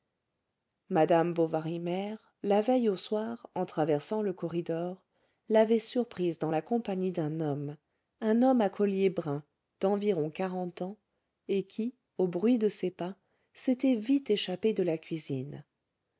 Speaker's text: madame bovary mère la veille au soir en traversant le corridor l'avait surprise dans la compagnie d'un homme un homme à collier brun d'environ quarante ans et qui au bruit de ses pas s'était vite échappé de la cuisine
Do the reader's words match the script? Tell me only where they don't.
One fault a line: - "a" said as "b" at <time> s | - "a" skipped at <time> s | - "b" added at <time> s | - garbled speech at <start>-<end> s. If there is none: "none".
none